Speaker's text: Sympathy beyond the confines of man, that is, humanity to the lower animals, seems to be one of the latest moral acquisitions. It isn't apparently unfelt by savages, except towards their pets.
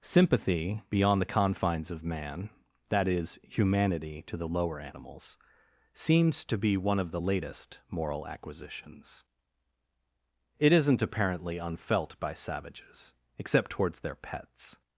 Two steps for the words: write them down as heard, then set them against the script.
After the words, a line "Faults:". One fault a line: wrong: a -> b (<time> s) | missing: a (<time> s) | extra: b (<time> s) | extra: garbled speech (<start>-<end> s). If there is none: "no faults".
Sympathy beyond the confines of man, that is, humanity to the lower animals, seems to be one of the latest moral acquisitions. It isn't apparently unfelt by savages, except towards their pets.
Faults:
no faults